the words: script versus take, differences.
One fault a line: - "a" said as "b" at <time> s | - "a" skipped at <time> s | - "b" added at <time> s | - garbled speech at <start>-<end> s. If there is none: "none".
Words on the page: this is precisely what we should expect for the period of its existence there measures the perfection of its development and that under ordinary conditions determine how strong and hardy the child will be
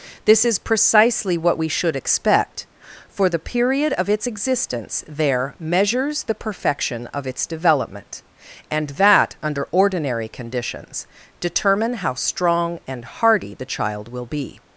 none